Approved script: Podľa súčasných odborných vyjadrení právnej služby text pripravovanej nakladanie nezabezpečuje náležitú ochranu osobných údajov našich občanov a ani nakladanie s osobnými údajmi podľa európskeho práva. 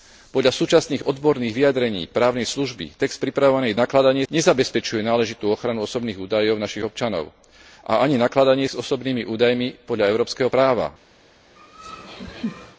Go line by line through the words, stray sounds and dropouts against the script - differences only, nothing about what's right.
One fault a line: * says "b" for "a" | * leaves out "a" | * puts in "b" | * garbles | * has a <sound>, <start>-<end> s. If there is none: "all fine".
* has a laugh, 11.6-12.8 s